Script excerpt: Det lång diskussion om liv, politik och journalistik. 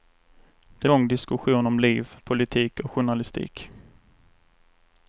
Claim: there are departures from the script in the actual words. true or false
false